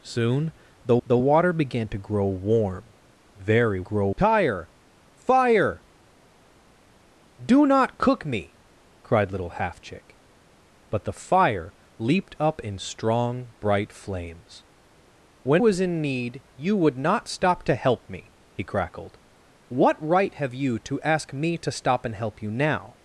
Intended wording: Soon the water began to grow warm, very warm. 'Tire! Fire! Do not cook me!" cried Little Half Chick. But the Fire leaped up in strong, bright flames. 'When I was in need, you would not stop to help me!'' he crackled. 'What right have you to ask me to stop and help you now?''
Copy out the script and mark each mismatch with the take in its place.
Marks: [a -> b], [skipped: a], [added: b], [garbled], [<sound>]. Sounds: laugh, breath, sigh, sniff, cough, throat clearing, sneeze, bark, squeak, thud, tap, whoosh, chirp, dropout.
Soon the [added: the] water began to grow warm, very [warm. -> grow] 'Tire! Fire! Do not cook me!" cried Little Half Chick. But the Fire leaped up in strong, bright flames. 'When [skipped: I] was in need, you would not stop to help me!'' he crackled. 'What right have you to ask me to stop and help you now?''